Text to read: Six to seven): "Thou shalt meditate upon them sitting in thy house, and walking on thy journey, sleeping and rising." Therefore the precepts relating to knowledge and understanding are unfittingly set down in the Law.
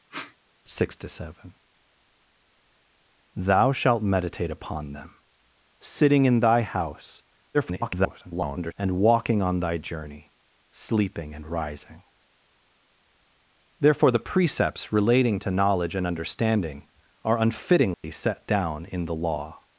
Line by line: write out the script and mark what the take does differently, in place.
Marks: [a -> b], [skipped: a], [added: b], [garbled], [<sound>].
[sniff] Six to seven): "Thou shalt meditate upon them sitting in thy house, [garbled] and walking on thy journey, sleeping and rising." Therefore the precepts relating to knowledge and understanding are unfittingly [dropout] set down in the Law.